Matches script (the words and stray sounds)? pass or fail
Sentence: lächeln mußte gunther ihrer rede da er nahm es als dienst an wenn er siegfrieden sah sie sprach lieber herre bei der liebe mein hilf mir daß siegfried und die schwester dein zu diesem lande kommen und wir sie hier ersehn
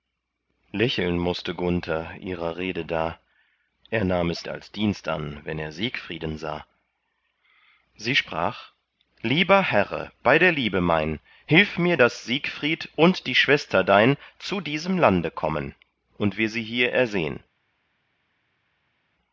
pass